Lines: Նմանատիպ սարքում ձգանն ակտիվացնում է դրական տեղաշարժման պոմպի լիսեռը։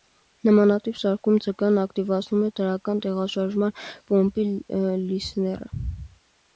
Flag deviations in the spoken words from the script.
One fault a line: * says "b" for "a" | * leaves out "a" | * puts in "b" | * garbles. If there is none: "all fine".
all fine